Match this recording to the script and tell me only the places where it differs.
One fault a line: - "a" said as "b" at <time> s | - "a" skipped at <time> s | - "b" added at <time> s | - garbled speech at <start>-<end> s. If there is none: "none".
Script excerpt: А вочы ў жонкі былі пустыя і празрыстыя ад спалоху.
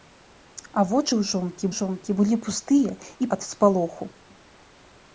- "жонкі" added at 1.8 s
- "празрыстыя" skipped at 3.3 s